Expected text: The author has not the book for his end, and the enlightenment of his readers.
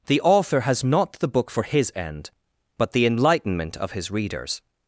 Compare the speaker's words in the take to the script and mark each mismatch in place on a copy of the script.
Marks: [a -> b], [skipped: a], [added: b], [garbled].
The author has not the book for his end, [and -> but] the enlightenment of his readers.